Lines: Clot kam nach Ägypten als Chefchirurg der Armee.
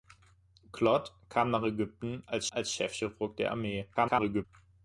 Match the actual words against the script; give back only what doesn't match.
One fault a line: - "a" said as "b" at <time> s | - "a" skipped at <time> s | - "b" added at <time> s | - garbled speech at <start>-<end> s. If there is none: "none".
- "als" added at 2.5 s
- garbled speech at 3.9-4.5 s